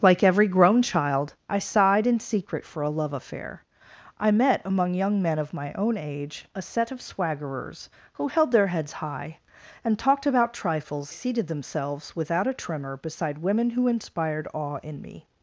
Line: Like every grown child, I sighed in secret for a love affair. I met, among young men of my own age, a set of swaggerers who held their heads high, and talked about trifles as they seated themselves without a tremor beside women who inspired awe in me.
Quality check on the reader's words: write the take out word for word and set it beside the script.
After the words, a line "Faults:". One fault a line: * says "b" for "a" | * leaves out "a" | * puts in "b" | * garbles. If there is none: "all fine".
Like every grown child, I sighed in secret for a love affair. I met, among young men of my own age, a set of swaggerers who held their heads high, and talked about trifles seated themselves without a tremor beside women who inspired awe in me.
Faults:
* leaves out "as they"